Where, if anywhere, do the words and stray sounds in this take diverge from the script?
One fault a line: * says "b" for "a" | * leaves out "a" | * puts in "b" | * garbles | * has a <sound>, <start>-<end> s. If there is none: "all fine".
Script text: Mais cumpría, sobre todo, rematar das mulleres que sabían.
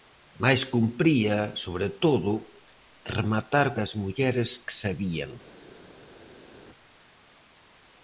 all fine